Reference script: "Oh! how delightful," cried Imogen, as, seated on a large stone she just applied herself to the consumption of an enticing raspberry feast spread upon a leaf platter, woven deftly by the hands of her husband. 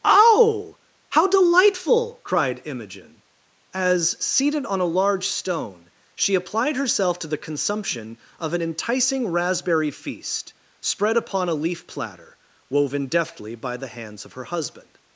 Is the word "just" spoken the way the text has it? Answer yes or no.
no